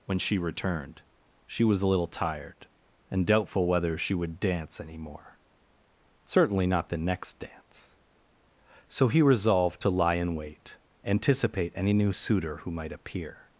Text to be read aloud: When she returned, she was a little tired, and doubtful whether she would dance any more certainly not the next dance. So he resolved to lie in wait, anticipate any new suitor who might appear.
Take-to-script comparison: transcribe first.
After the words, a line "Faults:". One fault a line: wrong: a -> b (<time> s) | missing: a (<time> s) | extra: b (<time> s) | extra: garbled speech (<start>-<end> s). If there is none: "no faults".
When she returned, she was a little tired, and doubtful whether she would dance any more certainly not the next dance. So he resolved to lie in wait, anticipate any new suitor who might appear.
Faults:
no faults